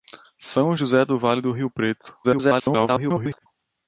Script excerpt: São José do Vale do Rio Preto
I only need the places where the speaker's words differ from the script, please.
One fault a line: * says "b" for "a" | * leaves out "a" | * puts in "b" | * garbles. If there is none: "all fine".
* garbles